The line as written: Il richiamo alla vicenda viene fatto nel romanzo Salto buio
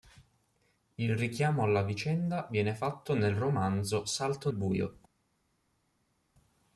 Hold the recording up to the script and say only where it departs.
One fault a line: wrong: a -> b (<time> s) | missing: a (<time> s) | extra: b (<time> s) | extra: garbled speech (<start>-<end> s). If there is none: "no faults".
no faults